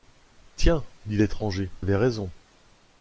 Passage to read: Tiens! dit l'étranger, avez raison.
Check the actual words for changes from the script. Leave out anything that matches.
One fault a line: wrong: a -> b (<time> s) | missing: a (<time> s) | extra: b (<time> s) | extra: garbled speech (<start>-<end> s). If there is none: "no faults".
no faults